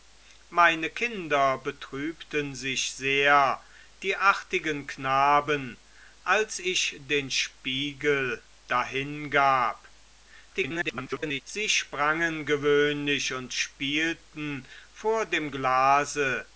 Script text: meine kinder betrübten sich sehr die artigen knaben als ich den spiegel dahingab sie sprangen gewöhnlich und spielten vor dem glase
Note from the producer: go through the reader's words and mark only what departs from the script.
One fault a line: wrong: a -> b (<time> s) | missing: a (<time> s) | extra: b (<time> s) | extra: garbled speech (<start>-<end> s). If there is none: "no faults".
extra: garbled speech (10.5-11.4 s)